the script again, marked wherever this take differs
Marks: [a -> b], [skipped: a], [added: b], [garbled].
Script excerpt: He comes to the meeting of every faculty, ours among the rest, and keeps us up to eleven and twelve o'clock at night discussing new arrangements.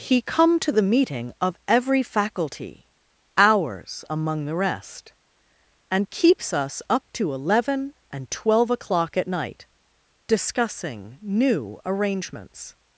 He [comes -> come] to the meeting of every faculty, ours among the rest, and keeps us up to eleven and twelve o'clock at night discussing new arrangements.